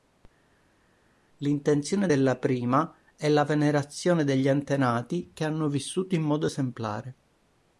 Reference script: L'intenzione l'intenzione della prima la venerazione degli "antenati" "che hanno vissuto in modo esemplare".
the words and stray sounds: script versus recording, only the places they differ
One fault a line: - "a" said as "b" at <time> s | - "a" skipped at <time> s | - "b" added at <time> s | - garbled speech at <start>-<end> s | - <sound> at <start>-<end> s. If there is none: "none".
- "l'intenzione" skipped at 2.1 s
- "è" added at 3.2 s